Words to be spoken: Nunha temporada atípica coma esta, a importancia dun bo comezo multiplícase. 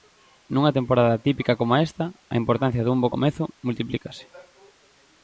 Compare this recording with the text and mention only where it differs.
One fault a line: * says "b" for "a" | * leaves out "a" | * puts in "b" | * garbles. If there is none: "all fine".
all fine